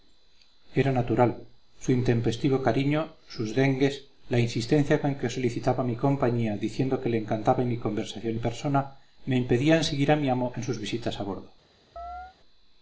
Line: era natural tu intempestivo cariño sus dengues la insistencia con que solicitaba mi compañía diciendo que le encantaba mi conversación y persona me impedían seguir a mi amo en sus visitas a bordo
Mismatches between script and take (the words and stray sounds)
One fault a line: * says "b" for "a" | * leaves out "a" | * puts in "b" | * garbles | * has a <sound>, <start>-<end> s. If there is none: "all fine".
* says "su" for "tu"
* has a chirp, 12.0-12.4 s